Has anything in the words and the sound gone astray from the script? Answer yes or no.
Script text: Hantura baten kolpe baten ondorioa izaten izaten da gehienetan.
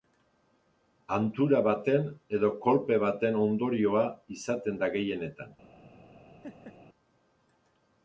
yes